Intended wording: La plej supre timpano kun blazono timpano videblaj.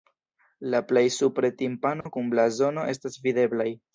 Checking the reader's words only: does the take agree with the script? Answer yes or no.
no